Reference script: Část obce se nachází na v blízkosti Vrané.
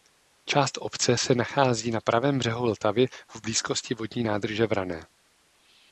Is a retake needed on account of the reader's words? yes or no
yes